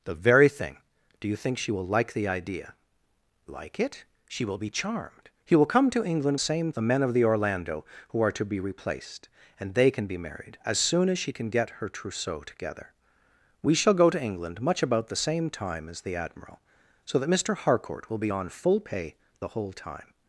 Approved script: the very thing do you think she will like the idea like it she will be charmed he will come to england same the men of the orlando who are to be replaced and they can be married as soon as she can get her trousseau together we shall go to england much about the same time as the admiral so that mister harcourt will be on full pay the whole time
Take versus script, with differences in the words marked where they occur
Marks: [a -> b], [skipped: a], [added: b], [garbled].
the very thing do you think she will like the idea like it she will be charmed he will come to england same the men of the orlando who are to be replaced and they can be married as soon as she can get her trousseau together we shall go to england much about the same time as the admiral so that mister harcourt will be on full pay the whole time